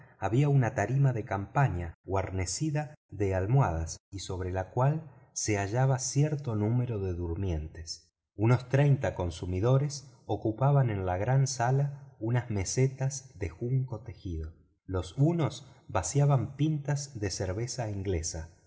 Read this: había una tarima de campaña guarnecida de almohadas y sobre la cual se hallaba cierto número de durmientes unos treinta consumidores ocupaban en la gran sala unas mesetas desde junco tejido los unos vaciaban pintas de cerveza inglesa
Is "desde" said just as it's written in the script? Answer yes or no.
no